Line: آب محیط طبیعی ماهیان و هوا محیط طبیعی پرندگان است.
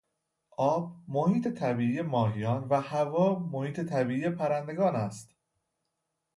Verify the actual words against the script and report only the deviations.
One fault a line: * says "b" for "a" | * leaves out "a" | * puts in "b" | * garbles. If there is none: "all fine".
all fine